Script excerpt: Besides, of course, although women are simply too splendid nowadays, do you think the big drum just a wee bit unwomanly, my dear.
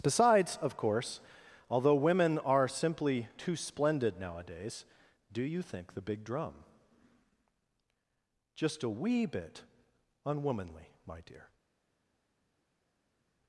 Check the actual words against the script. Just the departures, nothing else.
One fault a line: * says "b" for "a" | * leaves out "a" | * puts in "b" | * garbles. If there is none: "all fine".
all fine